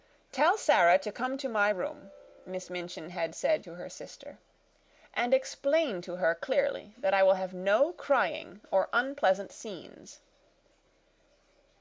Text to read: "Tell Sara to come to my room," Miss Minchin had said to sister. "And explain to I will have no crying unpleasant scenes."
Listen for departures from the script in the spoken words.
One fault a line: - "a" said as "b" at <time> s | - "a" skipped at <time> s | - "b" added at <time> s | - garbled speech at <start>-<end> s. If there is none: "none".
- "her" added at 3.7 s
- "her clearly that" added at 6.2 s
- "or" added at 8.7 s